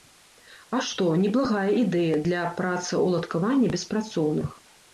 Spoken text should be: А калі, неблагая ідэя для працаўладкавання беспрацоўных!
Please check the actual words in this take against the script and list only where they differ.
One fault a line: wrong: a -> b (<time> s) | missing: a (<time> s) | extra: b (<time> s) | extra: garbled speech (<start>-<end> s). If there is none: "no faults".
wrong: калі -> што (0.8 s)